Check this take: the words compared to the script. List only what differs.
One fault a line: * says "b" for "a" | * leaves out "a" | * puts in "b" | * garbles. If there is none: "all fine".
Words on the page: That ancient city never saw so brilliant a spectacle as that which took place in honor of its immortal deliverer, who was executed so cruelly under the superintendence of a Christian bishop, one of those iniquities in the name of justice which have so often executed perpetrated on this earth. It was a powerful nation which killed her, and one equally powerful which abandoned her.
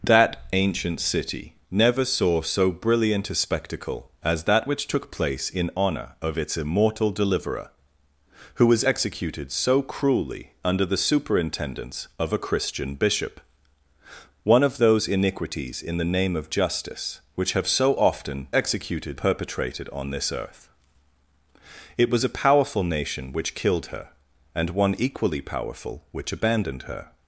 all fine